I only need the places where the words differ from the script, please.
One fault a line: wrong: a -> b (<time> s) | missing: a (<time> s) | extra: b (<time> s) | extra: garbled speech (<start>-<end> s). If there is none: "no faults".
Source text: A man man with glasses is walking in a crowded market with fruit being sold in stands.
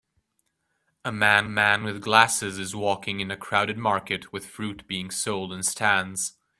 no faults